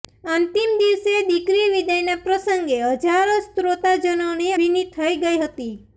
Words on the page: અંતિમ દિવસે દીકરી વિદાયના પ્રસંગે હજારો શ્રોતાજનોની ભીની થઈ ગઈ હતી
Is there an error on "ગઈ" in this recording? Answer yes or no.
no